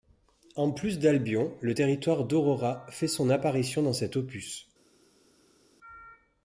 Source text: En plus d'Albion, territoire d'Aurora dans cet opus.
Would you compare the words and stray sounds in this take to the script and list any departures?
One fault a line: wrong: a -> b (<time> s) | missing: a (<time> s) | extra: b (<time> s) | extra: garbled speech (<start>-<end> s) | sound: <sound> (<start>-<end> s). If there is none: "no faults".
extra: le (1.6 s)
extra: fait son apparition (2.9 s)